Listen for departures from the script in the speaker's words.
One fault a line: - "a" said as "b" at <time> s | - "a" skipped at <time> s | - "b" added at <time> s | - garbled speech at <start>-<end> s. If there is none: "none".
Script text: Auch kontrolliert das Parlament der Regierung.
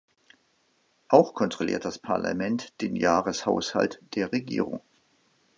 - "den Jahreshaushalt" added at 2.8 s